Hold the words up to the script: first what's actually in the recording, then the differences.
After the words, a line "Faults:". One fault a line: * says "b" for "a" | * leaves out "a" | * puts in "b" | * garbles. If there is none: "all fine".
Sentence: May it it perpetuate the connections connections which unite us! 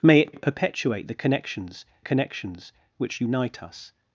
May it it perpetuate the connections connections which unite us!
Faults:
all fine